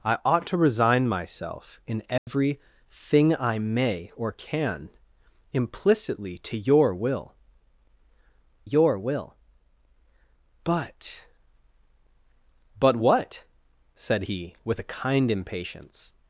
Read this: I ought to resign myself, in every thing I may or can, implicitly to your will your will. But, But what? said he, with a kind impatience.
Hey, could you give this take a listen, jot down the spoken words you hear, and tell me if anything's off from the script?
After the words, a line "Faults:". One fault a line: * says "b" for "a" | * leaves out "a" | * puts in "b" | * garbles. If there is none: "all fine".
I ought to resign myself, in every thing I may or can, implicitly to your will your will. But, But what? said he, with a kind impatience.
Faults:
all fine